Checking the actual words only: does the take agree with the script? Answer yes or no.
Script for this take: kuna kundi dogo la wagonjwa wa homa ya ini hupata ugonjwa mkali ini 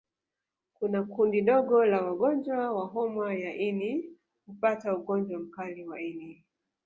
no